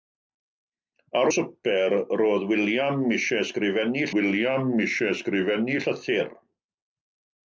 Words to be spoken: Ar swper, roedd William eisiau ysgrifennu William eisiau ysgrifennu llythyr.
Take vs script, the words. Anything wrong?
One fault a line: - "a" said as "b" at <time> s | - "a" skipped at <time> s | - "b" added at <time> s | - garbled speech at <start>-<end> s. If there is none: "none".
none